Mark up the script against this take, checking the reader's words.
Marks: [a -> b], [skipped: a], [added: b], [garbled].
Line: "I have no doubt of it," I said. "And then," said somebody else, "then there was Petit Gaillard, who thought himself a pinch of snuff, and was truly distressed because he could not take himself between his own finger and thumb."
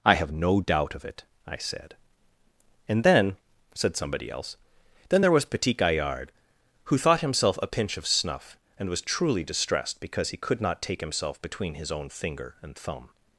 "I have no doubt of it," I said. "And then," said somebody else, "then there was Petit Gaillard, who thought himself a pinch of snuff, and was truly distressed because he could not take himself between his own finger and thumb."